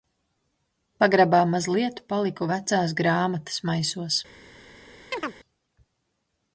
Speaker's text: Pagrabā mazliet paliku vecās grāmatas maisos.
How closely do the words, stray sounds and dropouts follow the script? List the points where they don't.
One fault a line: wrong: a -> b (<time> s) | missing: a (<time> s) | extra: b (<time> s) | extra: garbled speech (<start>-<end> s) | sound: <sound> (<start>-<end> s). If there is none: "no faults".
sound: chirp (5.1-5.3 s)